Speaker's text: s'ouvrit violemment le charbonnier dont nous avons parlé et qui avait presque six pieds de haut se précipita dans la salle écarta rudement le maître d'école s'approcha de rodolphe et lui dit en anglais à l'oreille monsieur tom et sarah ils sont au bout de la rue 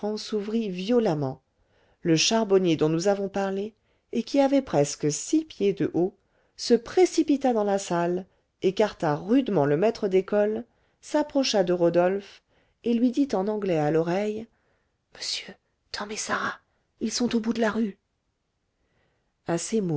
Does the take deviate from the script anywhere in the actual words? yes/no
no